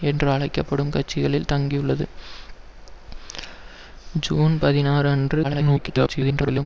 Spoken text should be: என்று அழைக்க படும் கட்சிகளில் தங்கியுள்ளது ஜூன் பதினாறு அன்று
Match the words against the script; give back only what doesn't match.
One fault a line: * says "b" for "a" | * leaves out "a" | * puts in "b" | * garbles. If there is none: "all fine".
* garbles